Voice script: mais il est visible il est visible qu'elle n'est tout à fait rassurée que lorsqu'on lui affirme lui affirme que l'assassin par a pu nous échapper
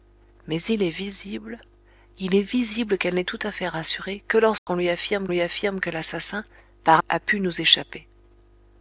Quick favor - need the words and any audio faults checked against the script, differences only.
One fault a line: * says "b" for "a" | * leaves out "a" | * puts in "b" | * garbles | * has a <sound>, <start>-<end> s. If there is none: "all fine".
* has a dropout, 4.6-4.7 s